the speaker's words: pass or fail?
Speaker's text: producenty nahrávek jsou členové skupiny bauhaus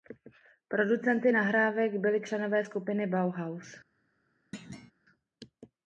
fail